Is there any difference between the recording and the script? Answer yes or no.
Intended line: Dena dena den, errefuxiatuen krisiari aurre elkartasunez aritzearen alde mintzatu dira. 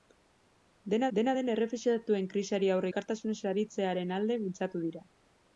no